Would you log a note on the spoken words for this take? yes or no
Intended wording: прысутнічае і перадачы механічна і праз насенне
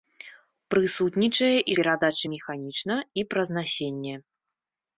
no